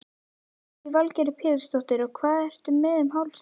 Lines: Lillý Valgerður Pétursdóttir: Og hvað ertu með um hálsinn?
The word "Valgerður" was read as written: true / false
true